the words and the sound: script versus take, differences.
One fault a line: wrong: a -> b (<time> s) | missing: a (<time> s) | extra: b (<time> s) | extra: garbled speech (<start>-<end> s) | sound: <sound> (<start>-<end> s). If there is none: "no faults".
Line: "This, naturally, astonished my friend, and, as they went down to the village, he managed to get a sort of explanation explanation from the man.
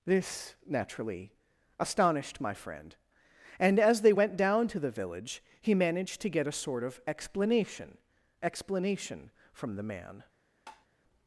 sound: tap (10.7-10.9 s)